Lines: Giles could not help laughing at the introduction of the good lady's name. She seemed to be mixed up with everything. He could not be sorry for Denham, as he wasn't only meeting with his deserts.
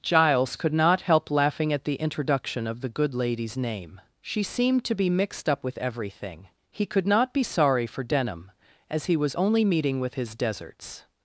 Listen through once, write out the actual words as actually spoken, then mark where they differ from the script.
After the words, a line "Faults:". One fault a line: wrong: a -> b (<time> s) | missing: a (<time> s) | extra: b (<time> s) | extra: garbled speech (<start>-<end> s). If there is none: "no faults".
Giles could not help laughing at the introduction of the good lady's name. She seemed to be mixed up with everything. He could not be sorry for Denham, as he was only meeting with his deserts.
Faults:
wrong: wasn't -> was (9.2 s)